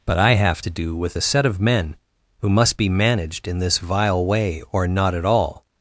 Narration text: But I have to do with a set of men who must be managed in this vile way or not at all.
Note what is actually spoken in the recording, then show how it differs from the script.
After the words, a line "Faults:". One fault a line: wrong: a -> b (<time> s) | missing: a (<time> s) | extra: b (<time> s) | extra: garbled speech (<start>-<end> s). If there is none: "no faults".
But I have to do with a set of men who must be managed in this vile way or not at all.
Faults:
no faults